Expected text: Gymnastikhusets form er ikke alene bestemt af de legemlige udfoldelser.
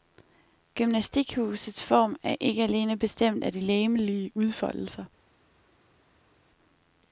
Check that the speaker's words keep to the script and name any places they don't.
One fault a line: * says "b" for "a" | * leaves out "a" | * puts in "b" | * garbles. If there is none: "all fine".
all fine